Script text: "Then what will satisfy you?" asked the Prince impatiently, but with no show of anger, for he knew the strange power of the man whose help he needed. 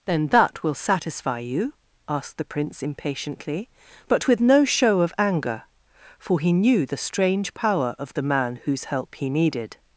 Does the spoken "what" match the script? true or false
false